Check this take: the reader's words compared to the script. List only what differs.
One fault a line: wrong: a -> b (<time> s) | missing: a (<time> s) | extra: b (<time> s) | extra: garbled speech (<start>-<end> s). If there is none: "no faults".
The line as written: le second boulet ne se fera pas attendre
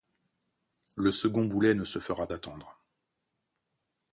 missing: pas (2.3 s)